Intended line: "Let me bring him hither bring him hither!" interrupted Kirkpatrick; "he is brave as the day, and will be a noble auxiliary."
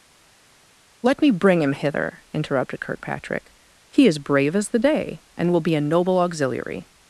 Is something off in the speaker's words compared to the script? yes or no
yes